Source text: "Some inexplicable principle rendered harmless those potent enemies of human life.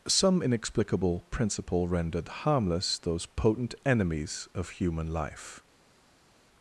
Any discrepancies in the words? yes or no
no